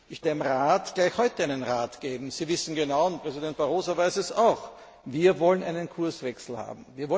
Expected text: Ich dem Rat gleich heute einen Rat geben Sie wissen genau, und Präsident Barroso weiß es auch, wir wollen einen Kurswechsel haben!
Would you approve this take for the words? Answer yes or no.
yes